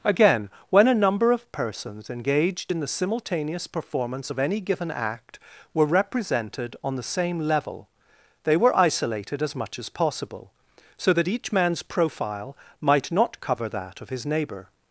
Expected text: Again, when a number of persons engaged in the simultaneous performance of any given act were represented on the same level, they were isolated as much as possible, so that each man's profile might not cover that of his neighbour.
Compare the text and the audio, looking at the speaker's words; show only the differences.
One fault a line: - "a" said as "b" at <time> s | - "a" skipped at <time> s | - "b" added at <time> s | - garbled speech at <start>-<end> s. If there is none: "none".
none